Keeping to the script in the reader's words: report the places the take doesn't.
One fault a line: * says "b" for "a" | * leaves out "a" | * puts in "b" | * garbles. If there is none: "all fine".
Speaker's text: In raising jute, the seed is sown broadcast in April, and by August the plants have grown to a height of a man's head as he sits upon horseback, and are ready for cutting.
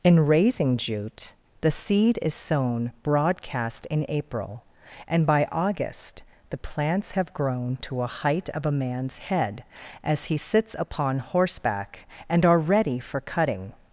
all fine